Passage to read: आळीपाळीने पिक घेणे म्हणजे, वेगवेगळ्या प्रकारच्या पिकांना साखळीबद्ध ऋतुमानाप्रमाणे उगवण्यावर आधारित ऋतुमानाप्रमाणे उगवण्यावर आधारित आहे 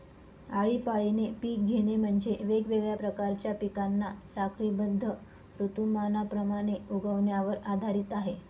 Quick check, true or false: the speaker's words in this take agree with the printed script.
false